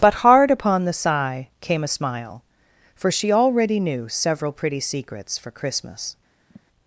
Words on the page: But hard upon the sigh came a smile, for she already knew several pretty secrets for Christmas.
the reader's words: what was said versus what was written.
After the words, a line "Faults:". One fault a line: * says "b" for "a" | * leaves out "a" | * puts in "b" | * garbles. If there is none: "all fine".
But hard upon the sigh came a smile, for she already knew several pretty secrets for Christmas.
Faults:
all fine